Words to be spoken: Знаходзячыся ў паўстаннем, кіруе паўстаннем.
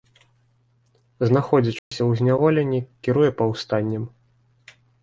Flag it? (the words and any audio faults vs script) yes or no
yes